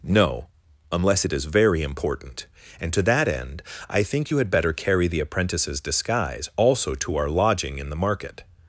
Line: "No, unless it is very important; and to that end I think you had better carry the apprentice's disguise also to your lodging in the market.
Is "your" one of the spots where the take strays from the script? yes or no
yes